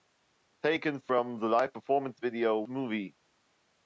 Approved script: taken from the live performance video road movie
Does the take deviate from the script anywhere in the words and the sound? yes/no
yes